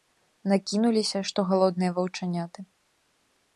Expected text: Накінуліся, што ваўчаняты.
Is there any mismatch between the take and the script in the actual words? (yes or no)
yes